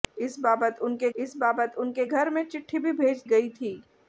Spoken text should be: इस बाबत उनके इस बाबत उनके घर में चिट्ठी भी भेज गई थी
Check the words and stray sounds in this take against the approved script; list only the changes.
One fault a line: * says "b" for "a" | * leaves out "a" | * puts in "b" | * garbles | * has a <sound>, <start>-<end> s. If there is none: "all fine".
all fine